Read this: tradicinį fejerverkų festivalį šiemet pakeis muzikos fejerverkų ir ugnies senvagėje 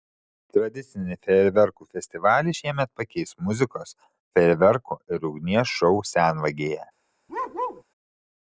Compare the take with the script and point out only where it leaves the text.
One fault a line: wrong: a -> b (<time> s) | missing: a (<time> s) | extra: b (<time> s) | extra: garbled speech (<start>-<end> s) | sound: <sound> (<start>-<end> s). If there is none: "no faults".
extra: šou (5.8 s)
sound: bark (7.3-7.8 s)